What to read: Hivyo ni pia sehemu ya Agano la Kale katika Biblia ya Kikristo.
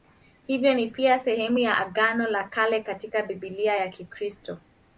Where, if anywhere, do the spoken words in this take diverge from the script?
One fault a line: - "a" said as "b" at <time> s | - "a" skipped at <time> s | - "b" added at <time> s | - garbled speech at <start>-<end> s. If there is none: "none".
none